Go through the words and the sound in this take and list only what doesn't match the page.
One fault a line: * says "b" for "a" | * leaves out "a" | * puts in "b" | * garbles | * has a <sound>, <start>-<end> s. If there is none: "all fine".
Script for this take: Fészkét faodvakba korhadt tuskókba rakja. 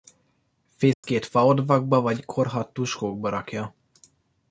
* has a dropout, 0.9-1.0 s
* puts in "vagy"